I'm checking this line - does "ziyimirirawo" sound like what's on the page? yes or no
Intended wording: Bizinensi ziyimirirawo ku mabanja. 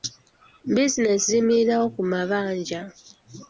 yes